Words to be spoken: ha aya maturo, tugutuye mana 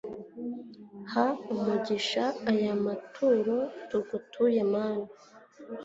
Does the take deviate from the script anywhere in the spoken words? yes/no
yes